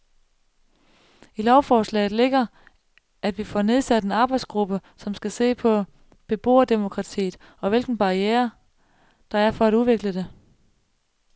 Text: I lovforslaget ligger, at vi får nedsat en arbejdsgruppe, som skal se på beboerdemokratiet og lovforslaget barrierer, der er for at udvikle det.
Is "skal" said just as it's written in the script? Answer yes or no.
yes